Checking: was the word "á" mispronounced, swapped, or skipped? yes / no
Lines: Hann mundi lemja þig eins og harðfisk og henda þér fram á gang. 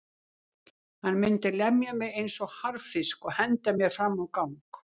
no